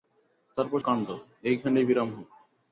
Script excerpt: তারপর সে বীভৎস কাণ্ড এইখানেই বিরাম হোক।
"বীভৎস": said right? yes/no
no